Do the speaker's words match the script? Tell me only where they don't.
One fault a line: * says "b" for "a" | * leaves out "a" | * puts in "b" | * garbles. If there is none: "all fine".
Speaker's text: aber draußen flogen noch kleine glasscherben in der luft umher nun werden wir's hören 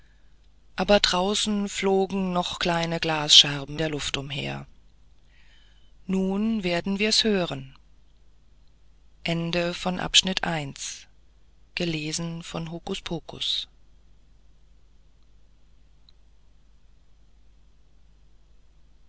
* leaves out "in"